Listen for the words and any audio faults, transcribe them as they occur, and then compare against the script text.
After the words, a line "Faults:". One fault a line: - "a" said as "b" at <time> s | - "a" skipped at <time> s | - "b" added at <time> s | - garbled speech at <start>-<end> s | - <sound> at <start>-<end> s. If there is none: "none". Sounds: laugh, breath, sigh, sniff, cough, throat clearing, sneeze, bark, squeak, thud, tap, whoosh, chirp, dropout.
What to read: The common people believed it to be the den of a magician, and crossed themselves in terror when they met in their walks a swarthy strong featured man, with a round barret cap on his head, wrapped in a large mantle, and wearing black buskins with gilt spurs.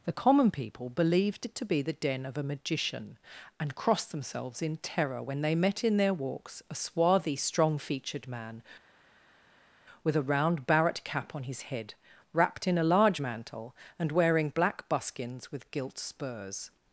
The common people believed it to be the den of a magician, and crossed themselves in terror when they met in their walks a swarthy strong featured man, with a round barret cap on his head, wrapped in a large mantle, and wearing black buskins with gilt spurs.
Faults:
none